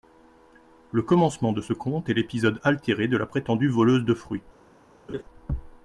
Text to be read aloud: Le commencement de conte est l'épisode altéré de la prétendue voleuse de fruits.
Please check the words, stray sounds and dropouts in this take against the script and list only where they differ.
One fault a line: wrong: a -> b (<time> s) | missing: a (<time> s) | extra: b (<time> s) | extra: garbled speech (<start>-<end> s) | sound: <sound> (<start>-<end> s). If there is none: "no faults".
extra: ce (1.6 s)
sound: laugh (5.1-5.2 s)